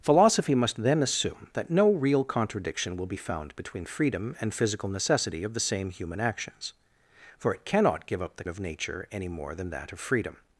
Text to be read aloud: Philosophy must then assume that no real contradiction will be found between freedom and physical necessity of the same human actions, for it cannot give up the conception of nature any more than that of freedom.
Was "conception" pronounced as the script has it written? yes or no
no